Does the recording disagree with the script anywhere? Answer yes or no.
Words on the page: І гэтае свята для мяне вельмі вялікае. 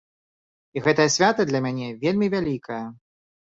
no